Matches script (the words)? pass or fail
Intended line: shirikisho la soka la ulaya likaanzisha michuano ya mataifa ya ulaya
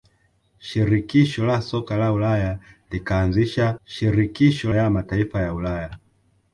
fail